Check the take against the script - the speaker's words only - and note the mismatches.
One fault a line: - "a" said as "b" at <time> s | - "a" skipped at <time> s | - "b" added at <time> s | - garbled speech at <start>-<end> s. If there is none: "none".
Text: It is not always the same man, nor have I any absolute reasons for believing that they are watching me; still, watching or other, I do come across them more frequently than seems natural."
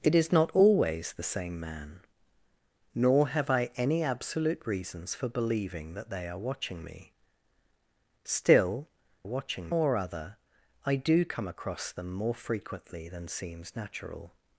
none